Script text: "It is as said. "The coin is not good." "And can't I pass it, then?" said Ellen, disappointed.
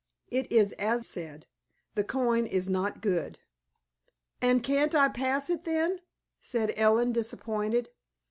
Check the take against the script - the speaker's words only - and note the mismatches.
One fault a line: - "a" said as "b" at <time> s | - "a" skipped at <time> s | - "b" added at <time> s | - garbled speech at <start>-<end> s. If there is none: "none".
none